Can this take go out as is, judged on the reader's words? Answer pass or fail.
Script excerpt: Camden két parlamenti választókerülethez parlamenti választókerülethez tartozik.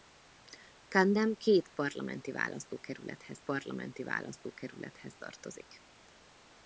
pass